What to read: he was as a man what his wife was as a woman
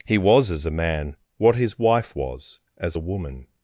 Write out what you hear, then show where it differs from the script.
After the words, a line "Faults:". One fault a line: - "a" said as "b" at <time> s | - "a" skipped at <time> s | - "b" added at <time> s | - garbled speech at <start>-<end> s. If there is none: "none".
he was as a man what his wife was as a woman
Faults:
none